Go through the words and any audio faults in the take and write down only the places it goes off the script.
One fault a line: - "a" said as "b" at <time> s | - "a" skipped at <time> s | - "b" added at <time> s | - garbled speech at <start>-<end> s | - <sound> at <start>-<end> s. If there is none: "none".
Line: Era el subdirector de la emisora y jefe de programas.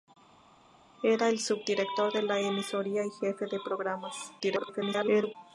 - garbled speech at 4.4-5.4 s